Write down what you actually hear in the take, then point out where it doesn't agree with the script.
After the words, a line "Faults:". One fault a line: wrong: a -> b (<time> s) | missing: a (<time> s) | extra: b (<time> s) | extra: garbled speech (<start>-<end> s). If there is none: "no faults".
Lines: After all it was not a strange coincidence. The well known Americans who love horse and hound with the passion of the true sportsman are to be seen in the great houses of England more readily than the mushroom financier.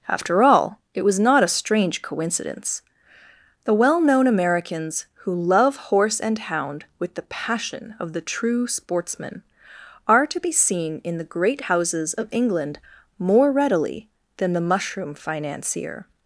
After all it was not a strange coincidence. The well known Americans who love horse and hound with the passion of the true sportsman are to be seen in the great houses of England more readily than the mushroom financier.
Faults:
no faults